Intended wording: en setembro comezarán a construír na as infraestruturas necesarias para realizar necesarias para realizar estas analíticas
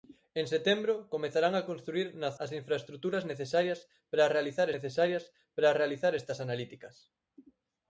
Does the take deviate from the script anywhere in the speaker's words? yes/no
no